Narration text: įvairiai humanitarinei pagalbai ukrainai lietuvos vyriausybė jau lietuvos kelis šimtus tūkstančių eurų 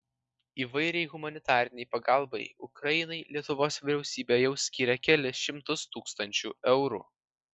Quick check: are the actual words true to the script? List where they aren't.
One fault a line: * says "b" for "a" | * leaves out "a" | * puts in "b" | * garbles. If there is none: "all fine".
* says "skyrė" for "lietuvos"